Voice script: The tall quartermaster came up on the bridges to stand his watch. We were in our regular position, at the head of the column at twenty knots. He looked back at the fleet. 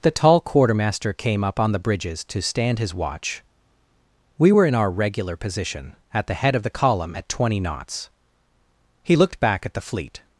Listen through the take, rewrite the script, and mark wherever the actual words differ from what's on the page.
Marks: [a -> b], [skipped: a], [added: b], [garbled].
The tall quartermaster came up on the bridges to stand his watch. We were in our regular position, at the head of the column at twenty knots. He looked back at the fleet.